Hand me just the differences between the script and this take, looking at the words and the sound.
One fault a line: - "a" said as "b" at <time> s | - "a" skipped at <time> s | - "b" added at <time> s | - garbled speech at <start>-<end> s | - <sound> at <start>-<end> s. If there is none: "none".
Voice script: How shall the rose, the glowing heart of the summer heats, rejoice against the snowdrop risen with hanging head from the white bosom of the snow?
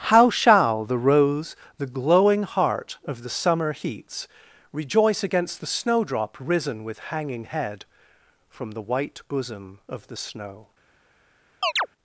- chirp at 11.6-11.9 s